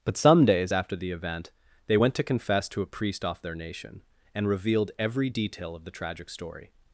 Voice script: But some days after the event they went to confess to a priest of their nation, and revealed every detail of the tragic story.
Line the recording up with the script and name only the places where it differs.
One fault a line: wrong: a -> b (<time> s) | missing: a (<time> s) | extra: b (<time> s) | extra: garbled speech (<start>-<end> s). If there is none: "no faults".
wrong: of -> off (3.2 s)